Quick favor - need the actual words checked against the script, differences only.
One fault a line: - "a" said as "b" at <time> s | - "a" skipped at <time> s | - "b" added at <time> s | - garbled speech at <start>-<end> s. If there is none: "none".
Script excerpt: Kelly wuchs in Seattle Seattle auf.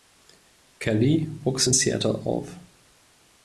- "Seattle" skipped at 2.2 s